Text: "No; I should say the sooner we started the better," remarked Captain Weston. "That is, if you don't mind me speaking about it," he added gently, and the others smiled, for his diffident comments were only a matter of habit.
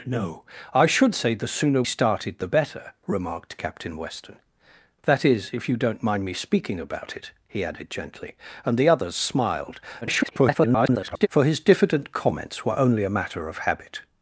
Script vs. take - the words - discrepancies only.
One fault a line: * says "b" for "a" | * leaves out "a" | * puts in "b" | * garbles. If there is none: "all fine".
* leaves out "we"
* garbles